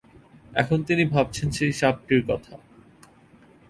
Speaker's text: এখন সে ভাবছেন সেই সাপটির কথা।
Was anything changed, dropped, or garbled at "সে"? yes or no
yes